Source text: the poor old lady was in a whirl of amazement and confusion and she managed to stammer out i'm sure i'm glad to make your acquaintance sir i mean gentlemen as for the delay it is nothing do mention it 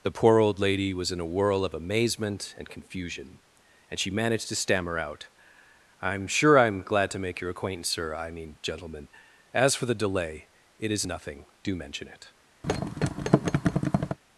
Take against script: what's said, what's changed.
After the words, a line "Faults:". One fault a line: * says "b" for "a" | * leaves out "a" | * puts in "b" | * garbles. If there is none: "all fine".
the poor old lady was in a whirl of amazement and confusion and she managed to stammer out i'm sure i'm glad to make your acquaintance sir i mean gentlemen as for the delay it is nothing do mention it
Faults:
all fine